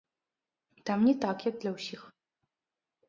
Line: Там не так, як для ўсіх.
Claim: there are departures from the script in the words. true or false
false